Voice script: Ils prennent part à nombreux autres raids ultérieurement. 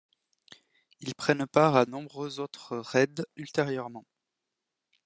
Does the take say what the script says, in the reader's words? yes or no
yes